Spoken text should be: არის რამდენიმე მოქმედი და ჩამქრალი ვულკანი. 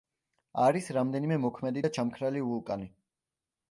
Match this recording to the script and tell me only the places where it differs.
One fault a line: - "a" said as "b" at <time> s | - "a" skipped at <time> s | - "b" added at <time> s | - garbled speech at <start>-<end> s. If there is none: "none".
none